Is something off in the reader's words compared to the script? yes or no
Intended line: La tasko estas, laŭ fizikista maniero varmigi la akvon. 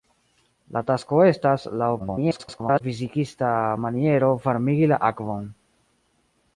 yes